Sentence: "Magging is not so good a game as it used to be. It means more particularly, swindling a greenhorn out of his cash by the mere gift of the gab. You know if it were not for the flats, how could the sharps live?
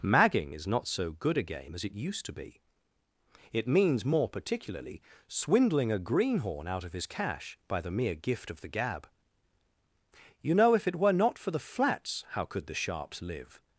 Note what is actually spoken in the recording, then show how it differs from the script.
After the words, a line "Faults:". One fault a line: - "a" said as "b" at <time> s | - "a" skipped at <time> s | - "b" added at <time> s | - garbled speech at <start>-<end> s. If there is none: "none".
"Magging is not so good a game as it used to be. It means more particularly, swindling a greenhorn out of his cash by the mere gift of the gab. You know if it were not for the flats, how could the sharps live?
Faults:
none